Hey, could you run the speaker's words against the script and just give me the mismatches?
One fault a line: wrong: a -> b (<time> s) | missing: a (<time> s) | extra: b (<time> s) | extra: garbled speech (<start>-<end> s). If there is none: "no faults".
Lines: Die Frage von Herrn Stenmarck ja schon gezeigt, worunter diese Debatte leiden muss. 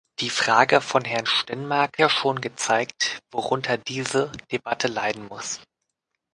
no faults